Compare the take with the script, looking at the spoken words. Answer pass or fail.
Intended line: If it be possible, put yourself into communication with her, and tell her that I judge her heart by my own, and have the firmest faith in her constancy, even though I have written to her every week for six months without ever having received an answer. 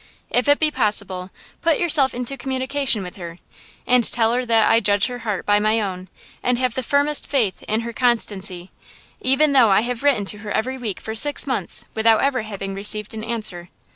pass